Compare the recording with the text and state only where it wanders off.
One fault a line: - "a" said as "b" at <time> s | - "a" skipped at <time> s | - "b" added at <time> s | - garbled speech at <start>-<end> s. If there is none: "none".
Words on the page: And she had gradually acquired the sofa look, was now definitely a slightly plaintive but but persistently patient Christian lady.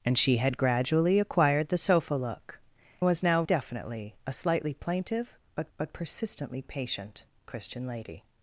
none